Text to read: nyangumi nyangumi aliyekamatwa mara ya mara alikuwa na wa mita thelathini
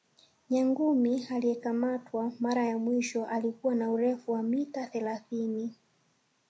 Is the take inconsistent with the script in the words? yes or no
yes